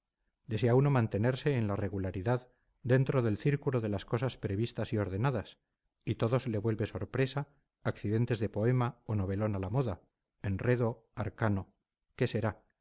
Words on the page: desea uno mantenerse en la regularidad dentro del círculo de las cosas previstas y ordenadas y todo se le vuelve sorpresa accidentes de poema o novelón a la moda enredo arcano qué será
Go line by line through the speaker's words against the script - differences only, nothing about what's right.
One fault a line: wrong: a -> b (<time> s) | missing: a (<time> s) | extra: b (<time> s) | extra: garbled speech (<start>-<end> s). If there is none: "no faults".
no faults